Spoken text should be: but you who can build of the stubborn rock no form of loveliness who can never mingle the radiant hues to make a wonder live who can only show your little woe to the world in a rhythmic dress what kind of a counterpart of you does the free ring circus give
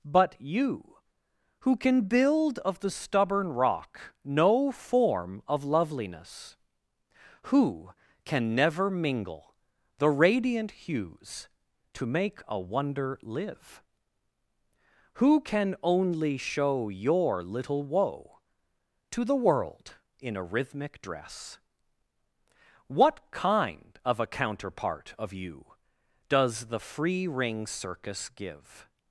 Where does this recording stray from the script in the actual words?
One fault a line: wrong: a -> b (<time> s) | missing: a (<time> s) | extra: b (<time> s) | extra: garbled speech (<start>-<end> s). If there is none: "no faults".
no faults